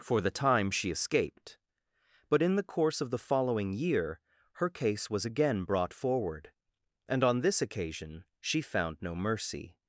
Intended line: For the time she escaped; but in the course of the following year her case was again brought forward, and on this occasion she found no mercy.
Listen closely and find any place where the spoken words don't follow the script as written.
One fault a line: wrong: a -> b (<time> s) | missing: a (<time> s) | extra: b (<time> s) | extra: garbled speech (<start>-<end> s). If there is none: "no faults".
no faults